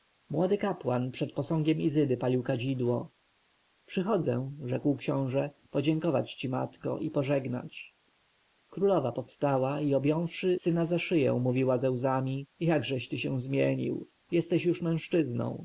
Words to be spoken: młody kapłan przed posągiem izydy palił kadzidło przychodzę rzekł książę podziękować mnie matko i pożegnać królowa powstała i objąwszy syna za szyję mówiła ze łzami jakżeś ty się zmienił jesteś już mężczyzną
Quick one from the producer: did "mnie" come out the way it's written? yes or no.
no